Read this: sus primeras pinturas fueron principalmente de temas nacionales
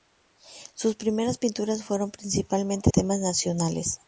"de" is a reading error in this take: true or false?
true